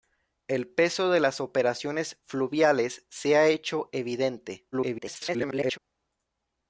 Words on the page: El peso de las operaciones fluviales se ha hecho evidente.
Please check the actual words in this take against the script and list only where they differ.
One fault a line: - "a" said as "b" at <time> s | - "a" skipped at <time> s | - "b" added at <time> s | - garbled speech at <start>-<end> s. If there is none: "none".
- garbled speech at 4.7-5.8 s